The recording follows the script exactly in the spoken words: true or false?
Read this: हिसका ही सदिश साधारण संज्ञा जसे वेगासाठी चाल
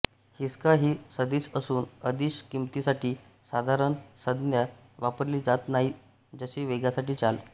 false